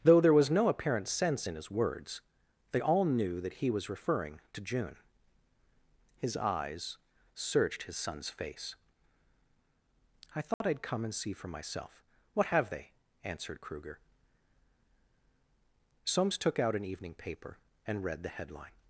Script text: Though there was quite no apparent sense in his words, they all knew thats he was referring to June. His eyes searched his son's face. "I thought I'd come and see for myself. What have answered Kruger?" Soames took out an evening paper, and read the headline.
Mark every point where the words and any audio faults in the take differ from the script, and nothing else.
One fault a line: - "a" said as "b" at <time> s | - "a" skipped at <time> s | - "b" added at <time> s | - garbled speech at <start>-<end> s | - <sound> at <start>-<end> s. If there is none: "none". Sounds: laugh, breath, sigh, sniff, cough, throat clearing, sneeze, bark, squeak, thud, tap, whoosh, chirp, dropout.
- "quite" skipped at 0.5 s
- "thats" said as "that" at 3.4 s
- dropout at 10.5-10.6 s
- "they" added at 12.7 s